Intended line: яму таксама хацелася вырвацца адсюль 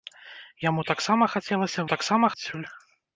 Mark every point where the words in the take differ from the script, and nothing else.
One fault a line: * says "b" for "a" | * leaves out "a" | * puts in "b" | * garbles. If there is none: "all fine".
* says "таксама" for "вырвацца"